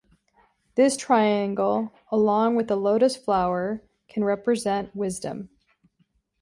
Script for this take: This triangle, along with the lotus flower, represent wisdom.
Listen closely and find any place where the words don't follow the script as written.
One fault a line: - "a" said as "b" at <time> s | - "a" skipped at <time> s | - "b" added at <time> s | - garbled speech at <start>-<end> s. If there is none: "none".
- "can" added at 4.1 s